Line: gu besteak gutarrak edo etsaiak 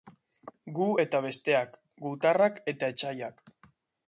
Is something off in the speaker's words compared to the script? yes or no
yes